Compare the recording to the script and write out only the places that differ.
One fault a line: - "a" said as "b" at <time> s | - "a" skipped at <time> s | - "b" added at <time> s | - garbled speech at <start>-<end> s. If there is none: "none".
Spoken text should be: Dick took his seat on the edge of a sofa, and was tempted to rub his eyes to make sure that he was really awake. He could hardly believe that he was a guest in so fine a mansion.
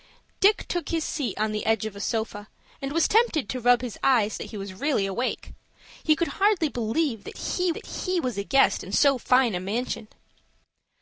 - "to make sure" skipped at 4.4 s
- "that he" added at 7.7 s